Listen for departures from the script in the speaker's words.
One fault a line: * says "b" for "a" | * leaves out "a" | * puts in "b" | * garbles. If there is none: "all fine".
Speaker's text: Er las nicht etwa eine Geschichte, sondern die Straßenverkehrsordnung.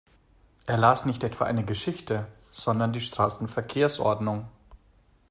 all fine